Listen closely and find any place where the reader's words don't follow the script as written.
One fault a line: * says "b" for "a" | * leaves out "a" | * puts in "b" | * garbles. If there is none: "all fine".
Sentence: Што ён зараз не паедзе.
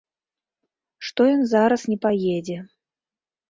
all fine